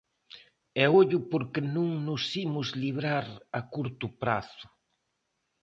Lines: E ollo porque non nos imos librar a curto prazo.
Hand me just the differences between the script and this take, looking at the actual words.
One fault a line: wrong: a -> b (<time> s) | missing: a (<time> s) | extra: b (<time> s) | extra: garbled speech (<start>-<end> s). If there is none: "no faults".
no faults